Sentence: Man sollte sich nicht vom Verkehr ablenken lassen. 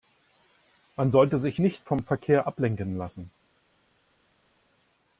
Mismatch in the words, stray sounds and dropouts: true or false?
false